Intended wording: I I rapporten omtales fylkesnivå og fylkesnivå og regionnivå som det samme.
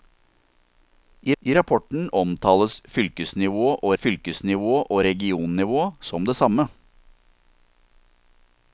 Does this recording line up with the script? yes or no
yes